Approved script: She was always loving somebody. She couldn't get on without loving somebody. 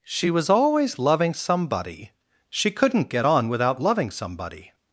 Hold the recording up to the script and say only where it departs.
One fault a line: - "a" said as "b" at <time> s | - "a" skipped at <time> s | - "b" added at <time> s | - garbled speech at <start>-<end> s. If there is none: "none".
none